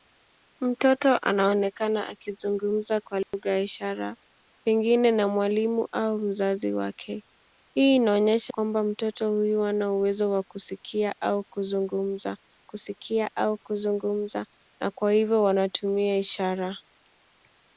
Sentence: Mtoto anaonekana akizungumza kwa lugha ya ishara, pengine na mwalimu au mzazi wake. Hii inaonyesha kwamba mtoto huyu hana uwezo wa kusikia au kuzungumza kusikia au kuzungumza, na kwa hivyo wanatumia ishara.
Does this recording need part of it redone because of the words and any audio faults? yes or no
yes